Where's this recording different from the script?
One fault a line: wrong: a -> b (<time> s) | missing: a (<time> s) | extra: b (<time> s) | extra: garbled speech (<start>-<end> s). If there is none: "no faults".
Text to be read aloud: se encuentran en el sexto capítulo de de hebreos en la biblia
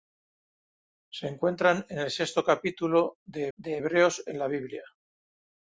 no faults